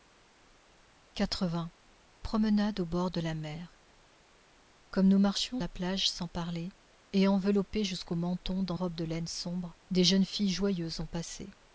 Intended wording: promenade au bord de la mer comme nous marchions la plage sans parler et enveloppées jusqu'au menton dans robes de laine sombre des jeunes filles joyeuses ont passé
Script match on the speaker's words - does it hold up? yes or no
yes